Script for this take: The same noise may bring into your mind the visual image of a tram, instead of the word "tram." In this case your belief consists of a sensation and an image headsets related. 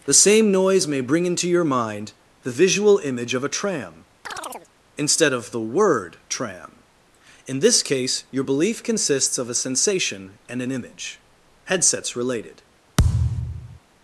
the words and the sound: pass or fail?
fail